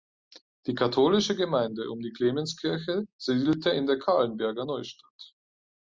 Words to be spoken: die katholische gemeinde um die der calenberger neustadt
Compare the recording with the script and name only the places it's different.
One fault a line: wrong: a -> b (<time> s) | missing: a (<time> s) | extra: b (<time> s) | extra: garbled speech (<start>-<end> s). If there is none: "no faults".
extra: clemenskirche siedelte in (2.1 s)